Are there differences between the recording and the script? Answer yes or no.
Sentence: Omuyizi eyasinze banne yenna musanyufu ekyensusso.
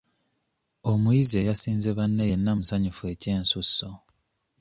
no